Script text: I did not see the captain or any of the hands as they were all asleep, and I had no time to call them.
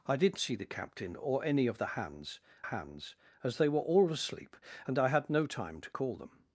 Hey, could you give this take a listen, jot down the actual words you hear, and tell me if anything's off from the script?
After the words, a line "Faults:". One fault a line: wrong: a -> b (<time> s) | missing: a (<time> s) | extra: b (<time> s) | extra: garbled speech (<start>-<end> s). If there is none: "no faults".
I did see the captain or any of the hands hands as they were all asleep, and I had no time to call them.
Faults:
missing: not (0.4 s)
extra: hands (2.6 s)